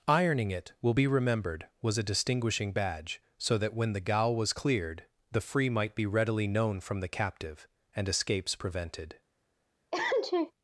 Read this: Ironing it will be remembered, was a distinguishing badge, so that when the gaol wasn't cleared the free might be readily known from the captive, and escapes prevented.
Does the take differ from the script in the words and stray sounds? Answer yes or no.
yes